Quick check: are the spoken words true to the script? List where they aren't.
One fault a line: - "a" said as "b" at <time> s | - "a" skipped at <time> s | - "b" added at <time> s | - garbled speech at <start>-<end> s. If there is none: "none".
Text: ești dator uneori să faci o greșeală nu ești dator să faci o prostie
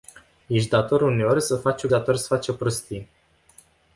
- "greșeală nu ești" skipped at 1.9 s